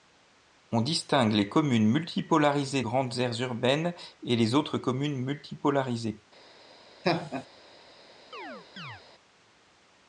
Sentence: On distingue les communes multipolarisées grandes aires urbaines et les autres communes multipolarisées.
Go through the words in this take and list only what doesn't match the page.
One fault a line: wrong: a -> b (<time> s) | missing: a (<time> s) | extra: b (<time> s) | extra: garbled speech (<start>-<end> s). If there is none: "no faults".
no faults